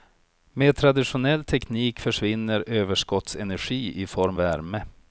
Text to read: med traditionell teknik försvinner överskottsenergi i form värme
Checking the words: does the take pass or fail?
pass